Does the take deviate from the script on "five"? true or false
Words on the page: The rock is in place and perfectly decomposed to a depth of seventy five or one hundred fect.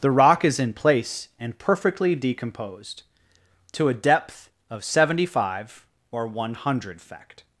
false